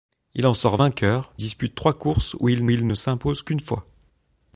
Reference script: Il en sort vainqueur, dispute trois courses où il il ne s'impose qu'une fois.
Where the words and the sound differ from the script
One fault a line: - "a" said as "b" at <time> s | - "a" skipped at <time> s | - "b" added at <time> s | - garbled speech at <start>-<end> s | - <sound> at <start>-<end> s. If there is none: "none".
none